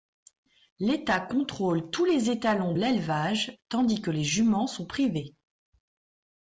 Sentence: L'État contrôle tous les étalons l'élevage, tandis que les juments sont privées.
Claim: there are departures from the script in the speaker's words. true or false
false